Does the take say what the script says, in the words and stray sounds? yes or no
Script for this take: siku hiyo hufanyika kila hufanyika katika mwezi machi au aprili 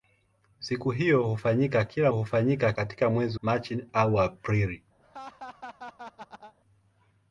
no